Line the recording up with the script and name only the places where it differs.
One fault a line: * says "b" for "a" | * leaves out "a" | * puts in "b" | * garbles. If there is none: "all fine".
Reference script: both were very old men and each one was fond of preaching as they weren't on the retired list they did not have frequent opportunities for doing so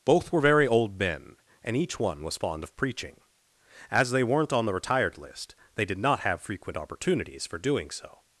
all fine